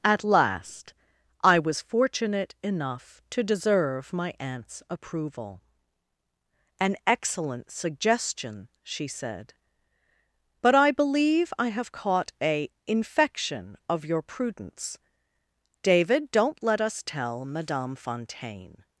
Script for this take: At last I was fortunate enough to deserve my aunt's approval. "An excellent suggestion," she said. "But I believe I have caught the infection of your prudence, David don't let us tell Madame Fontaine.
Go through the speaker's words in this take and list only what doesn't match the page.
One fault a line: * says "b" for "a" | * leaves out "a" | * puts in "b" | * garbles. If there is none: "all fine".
* says "a" for "the"